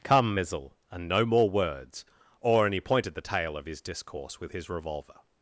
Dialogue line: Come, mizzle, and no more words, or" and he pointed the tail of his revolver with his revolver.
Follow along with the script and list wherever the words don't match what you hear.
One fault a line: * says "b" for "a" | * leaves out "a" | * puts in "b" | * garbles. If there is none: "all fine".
* says "discourse" for "revolver"